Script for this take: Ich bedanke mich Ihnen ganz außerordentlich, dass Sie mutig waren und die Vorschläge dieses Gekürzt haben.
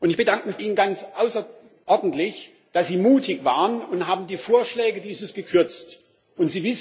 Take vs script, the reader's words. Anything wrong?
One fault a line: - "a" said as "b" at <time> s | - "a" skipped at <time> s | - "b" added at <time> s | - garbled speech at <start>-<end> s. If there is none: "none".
none